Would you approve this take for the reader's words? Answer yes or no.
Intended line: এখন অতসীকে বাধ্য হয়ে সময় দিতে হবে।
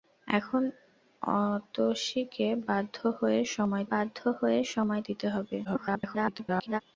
no